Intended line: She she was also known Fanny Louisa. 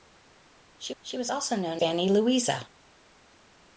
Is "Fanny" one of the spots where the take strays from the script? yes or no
no